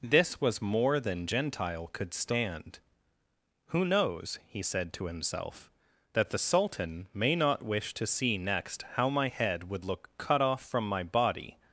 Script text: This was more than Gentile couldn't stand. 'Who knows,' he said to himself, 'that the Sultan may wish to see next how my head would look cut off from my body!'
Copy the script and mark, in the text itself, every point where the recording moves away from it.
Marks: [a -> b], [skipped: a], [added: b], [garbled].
This was more than Gentile [couldn't -> could] stand. 'Who knows,' he said to himself, 'that the Sultan may [added: not] wish to see next how my head would look cut off from my body!'